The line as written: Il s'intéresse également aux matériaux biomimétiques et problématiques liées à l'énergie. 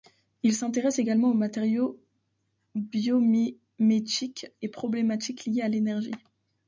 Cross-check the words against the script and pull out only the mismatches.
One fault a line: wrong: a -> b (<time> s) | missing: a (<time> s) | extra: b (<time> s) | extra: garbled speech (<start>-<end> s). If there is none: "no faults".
no faults